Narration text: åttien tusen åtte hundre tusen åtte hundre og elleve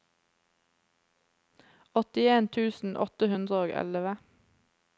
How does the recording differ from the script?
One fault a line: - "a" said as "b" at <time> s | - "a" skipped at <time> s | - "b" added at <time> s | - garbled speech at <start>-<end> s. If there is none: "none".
- "tusen åtte hundre" skipped at 3.6 s